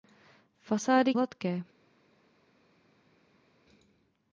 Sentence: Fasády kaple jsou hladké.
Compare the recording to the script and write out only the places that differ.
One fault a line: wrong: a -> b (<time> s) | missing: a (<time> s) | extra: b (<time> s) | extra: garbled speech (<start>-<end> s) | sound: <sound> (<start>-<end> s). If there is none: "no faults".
missing: kaple jsou (1.1 s)